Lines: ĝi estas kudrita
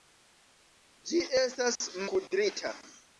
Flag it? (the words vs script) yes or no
no